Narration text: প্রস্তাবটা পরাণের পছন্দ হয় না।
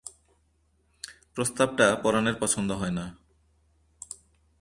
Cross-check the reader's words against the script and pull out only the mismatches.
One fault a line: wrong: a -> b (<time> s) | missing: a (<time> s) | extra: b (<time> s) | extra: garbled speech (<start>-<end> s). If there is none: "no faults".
no faults